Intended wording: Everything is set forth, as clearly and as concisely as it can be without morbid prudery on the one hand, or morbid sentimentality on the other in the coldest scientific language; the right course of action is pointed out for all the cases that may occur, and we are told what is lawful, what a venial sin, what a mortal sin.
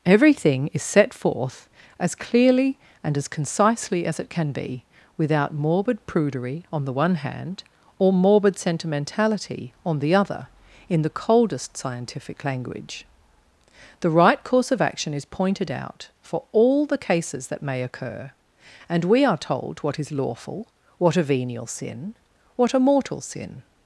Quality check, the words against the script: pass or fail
pass